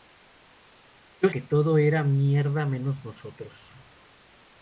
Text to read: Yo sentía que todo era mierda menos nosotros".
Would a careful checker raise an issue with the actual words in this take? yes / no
yes